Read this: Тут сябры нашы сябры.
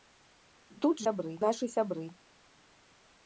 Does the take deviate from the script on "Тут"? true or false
false